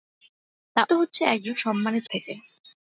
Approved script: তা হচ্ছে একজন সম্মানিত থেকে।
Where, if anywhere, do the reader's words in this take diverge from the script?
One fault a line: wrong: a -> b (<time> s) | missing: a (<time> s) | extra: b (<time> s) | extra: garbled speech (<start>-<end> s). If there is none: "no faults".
no faults